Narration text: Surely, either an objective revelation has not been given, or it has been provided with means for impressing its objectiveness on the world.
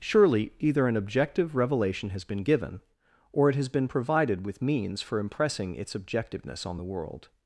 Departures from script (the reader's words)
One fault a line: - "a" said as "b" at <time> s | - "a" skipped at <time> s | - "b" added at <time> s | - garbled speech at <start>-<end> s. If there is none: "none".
- "not" skipped at 2.2 s